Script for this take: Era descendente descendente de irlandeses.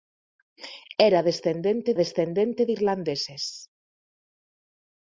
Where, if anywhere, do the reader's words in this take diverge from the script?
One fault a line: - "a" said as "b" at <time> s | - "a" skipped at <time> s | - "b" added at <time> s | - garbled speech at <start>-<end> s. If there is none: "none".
none